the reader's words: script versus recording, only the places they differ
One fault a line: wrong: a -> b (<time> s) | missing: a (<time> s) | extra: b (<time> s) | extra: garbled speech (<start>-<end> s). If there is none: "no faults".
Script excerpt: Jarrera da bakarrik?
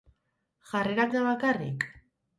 no faults